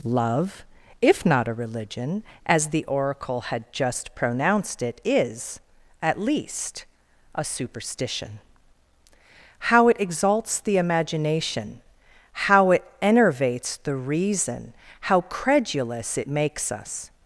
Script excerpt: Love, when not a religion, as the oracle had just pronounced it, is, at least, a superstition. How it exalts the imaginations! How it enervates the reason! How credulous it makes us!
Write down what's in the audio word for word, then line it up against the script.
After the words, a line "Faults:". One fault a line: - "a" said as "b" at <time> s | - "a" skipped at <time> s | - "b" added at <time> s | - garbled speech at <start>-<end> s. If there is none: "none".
Love, if not a religion, as the oracle had just pronounced it, is, at least, a superstition. How it exalts the imagination! How it enervates the reason! How credulous it makes us!
Faults:
- "when" said as "if" at 1.0 s
- "imaginations" said as "imagination" at 10.8 s